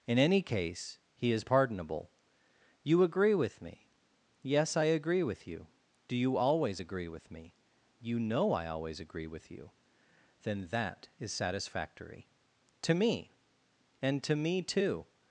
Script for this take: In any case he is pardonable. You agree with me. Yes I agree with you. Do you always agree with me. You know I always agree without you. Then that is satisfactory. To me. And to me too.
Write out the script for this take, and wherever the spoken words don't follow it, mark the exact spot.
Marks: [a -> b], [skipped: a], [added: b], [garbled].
In any case he is pardonable. You agree with me. Yes I agree with you. Do you always agree with me. You know I always agree [without -> with] you. Then that is satisfactory. To me. And to me too.